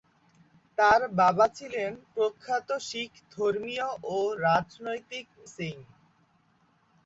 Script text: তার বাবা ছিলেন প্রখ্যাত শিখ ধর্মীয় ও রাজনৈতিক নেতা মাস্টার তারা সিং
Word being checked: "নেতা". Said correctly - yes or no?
no